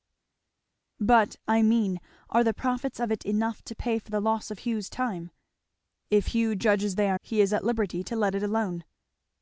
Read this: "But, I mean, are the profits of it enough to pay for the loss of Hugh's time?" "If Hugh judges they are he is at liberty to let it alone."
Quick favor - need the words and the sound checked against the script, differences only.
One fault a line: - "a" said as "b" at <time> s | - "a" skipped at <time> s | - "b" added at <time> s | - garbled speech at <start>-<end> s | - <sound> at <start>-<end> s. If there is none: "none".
none